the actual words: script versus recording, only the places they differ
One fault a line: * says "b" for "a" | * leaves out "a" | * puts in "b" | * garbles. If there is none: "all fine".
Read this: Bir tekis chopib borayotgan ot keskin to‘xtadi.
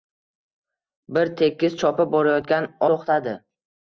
* leaves out "ot keskin"